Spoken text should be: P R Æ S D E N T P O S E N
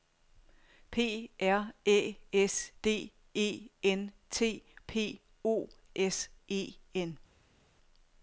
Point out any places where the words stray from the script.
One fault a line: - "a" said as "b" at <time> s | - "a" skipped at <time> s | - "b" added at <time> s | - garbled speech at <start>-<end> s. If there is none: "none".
none